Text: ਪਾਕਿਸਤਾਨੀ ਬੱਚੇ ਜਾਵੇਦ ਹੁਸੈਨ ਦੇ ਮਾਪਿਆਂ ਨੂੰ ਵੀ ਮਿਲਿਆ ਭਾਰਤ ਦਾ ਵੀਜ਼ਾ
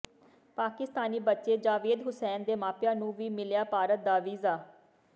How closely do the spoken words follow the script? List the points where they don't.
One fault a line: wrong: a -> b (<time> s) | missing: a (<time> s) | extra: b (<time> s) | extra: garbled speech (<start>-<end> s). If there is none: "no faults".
no faults